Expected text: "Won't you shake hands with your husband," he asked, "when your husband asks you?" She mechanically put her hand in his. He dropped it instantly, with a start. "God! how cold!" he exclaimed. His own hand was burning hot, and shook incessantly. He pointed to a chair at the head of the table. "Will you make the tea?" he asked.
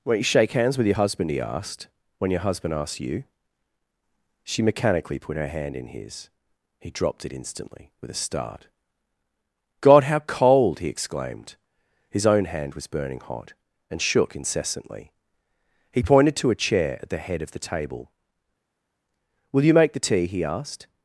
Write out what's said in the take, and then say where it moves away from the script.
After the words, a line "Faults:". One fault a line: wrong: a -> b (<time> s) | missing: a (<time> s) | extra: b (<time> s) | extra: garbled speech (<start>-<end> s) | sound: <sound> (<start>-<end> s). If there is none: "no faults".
"Won't you shake hands with your husband," he asked, "when your husband asks you?" She mechanically put her hand in his. He dropped it instantly, with a start. "God! how cold!" he exclaimed. His own hand was burning hot, and shook incessantly. He pointed to a chair at the head of the table. "Will you make the tea?" he asked.
Faults:
no faults